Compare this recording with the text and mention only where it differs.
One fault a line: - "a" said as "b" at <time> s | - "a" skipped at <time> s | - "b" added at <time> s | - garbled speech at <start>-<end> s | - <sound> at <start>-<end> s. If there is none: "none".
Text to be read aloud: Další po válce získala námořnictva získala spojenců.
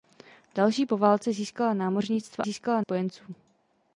none